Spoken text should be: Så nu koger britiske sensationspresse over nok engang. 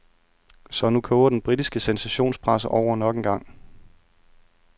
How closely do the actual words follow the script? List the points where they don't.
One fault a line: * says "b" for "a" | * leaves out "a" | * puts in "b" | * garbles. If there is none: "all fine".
* puts in "den"